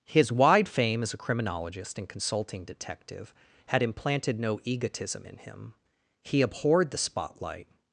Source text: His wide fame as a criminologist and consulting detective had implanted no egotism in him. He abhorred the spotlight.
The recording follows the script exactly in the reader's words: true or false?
true